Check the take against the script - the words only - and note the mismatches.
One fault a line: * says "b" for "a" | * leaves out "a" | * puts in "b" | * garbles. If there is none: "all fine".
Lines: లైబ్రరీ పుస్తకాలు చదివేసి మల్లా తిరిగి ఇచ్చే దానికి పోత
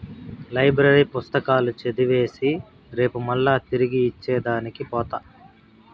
* puts in "రేపు"